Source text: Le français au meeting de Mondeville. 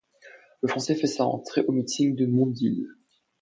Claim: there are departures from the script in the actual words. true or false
true